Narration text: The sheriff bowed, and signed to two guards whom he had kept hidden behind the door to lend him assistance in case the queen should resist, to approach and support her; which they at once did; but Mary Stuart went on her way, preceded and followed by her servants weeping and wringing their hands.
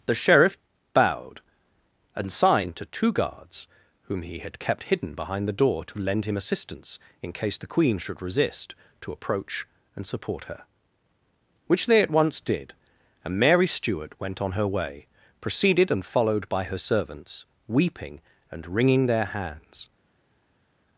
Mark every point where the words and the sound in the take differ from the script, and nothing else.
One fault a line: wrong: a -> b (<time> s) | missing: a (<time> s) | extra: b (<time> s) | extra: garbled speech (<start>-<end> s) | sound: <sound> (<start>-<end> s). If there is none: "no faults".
wrong: but -> and (13.2 s)